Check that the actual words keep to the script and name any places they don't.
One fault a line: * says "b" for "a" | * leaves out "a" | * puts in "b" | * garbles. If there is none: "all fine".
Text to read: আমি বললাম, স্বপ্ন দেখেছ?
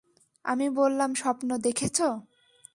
all fine